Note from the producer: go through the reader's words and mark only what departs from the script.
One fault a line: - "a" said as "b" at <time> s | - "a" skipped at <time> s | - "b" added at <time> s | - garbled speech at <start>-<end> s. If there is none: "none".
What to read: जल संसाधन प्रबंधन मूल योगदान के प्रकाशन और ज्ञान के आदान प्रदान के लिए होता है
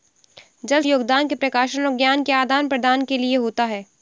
- "संसाधन प्रबंधन मूल" skipped at 0.8 s